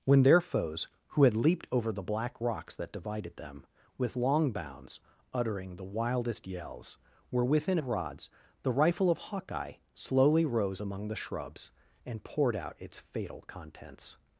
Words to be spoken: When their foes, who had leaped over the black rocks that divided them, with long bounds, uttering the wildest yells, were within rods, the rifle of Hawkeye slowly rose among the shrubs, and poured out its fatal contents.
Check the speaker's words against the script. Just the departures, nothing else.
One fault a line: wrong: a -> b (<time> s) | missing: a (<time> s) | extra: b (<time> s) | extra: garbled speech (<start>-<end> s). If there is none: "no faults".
no faults